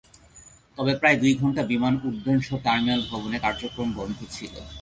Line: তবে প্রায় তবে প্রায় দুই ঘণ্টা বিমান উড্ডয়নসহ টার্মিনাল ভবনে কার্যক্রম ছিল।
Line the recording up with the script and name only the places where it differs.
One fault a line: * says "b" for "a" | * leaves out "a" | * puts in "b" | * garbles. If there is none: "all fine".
* leaves out "তবে প্রায়"
* puts in "বন্ধ"